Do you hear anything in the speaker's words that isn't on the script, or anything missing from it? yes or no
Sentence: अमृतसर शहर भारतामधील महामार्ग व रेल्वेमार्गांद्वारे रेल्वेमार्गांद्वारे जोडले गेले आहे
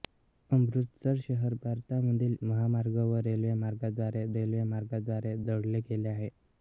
no